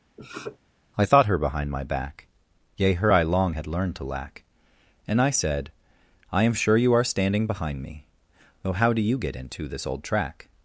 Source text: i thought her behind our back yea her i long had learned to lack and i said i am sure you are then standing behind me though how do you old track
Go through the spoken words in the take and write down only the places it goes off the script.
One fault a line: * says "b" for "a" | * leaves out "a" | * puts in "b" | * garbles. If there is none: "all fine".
* says "my" for "our"
* leaves out "then"
* puts in "get into this"